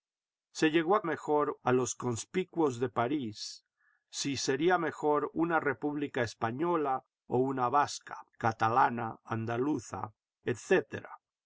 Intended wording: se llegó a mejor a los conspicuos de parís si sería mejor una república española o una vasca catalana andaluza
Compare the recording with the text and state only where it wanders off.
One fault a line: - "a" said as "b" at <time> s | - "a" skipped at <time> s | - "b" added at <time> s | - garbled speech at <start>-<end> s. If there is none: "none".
none